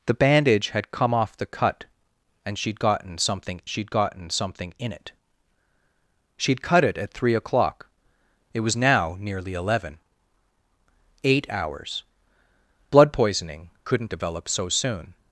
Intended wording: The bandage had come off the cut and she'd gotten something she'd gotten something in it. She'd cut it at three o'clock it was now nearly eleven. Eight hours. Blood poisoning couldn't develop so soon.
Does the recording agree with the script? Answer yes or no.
yes